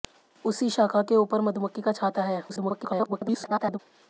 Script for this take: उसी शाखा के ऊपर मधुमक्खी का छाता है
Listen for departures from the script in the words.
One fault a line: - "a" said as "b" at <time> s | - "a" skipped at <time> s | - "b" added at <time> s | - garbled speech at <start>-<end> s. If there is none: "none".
- garbled speech at 2.5-3.8 s